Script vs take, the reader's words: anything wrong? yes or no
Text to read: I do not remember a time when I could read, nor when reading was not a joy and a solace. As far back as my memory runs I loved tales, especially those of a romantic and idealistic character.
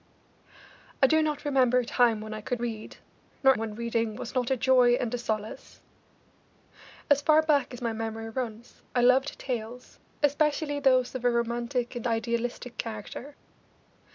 no